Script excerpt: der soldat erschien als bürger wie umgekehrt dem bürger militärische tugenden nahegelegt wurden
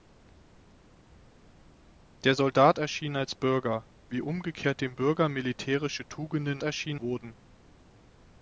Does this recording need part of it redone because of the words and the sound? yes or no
yes